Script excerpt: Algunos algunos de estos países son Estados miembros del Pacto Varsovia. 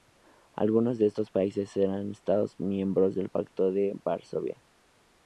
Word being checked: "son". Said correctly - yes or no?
no